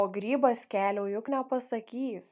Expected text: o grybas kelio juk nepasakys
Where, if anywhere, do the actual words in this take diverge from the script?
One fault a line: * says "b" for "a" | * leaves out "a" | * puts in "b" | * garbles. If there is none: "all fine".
all fine